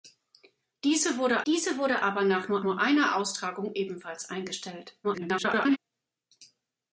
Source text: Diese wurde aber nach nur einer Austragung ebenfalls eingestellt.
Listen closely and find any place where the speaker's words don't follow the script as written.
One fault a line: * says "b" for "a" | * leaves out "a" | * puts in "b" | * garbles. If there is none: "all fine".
* puts in "diese wurde"
* puts in "nur"
* garbles